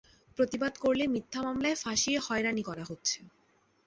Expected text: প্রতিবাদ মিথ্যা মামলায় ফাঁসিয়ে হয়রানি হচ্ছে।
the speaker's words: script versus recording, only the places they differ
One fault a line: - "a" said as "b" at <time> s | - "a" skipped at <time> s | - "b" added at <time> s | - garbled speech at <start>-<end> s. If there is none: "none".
- "করলে" added at 0.8 s
- "করা" added at 2.6 s